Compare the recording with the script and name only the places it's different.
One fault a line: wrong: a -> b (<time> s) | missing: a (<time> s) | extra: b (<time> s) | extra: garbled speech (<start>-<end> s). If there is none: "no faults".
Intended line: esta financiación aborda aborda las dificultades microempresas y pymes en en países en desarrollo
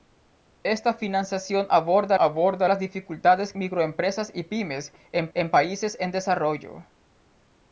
no faults